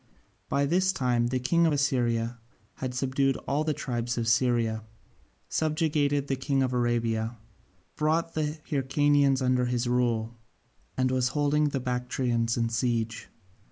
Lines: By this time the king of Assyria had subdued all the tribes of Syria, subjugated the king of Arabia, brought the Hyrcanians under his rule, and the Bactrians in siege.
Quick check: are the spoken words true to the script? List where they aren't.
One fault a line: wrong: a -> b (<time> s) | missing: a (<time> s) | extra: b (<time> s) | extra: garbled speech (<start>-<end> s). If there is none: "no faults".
extra: was holding (11.1 s)